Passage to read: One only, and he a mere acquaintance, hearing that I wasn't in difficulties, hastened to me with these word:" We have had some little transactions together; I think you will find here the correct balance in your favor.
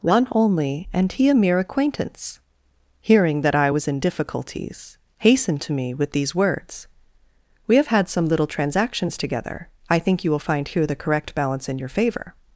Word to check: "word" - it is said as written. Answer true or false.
false